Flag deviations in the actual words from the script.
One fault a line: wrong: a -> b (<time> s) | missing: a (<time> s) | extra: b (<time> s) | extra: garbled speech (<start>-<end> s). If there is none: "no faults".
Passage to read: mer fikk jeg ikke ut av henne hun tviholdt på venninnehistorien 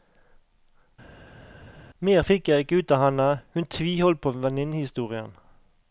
no faults